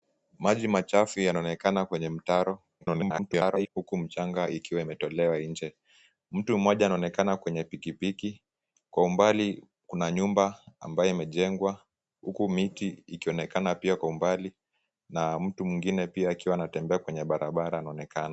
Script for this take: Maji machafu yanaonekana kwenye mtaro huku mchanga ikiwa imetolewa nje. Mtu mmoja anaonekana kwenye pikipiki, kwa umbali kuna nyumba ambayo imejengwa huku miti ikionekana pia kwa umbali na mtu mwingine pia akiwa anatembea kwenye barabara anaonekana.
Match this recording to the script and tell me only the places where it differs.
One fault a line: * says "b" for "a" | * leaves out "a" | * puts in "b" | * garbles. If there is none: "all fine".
* garbles